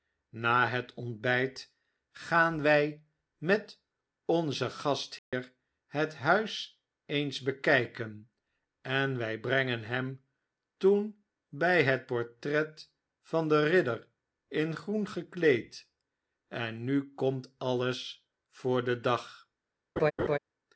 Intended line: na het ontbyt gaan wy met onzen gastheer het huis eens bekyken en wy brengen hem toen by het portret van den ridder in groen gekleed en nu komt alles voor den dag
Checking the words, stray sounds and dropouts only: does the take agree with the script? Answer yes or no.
no